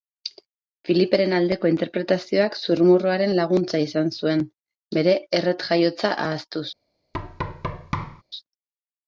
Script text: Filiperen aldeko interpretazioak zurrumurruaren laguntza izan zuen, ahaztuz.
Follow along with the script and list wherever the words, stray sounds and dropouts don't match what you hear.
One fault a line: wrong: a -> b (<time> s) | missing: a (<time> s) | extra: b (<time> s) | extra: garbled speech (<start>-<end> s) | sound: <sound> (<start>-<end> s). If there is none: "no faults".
extra: bere erret jaiotza (5.0 s)
sound: thud (7.1-8.2 s)